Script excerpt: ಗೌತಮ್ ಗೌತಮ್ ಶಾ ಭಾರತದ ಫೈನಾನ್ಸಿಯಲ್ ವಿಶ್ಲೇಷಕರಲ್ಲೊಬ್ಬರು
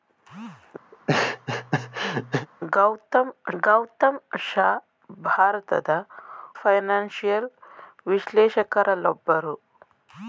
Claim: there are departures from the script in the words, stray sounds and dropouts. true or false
true